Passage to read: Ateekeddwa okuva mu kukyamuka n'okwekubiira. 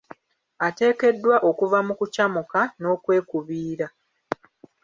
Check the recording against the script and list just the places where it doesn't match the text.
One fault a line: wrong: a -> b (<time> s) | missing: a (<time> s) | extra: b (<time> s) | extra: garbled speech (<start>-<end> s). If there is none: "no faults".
no faults